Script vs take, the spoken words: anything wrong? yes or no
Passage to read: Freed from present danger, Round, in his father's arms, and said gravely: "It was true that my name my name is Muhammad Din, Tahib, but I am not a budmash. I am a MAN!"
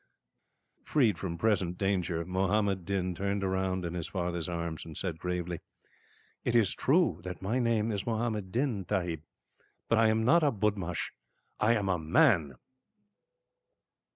yes